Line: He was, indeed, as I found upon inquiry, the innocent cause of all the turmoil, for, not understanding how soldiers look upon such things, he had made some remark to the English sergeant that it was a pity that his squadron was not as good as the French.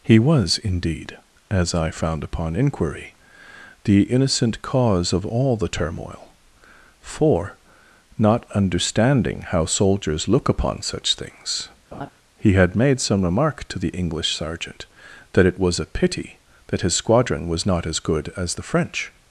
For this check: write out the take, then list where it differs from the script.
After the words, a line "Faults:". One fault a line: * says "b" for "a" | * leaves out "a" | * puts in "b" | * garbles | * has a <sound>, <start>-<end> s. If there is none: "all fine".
He was, indeed, as I found upon inquiry, the innocent cause of all the turmoil, for, not understanding how soldiers look upon such things, he had made some remark to the English sergeant that it was a pity that his squadron was not as good as the French.
Faults:
* has a laugh, 11.9-12.1 s